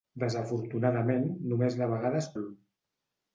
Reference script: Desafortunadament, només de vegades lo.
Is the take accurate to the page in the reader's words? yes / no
yes